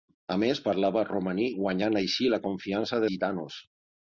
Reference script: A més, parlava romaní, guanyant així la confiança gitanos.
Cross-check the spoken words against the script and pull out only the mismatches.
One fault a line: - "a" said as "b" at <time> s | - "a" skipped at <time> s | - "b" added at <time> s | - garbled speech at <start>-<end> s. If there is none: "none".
none